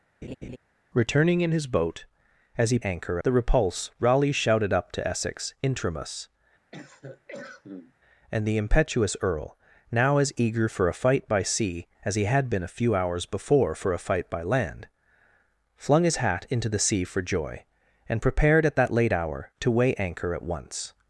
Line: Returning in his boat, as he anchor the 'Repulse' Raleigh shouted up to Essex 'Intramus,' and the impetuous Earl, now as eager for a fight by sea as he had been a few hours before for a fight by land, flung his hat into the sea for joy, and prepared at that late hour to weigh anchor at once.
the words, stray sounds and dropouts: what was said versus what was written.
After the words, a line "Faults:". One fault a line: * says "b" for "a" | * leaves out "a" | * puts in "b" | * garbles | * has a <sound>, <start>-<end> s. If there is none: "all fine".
Returning in his boat, as he anchor the 'Repulse' Raleigh shouted up to Essex 'Intramus,' and the impetuous Earl, now as eager for a fight by sea as he had been a few hours before for a fight by land, flung his hat into the sea for joy, and prepared at that late hour to weigh anchor at once.
Faults:
* has a laugh, 0.2-0.6 s
* has a cough, 6.7-7.9 s